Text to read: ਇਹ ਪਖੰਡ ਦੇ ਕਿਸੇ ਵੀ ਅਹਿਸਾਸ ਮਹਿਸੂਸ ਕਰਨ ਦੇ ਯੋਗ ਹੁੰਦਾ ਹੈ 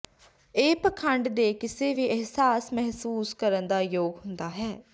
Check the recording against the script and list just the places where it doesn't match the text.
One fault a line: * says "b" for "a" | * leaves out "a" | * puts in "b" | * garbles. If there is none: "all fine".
all fine